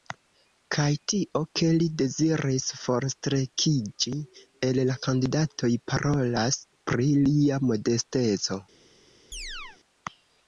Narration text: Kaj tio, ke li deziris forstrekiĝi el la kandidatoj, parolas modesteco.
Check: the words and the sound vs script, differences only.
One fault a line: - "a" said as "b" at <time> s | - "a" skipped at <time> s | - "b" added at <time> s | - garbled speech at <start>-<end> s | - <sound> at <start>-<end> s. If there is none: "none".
- "pri lia" added at 6.9 s
- chirp at 9.3-9.8 s